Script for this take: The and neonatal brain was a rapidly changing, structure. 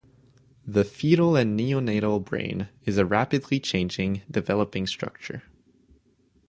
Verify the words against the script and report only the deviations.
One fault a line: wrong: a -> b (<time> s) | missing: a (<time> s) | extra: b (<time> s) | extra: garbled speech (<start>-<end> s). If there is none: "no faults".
extra: fetal (0.8 s)
wrong: was -> is (2.9 s)
extra: developing (4.3 s)